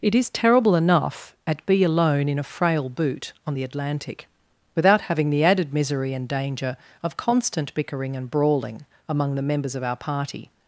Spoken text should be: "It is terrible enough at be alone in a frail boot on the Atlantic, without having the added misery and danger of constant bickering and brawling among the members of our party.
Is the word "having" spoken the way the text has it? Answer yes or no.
yes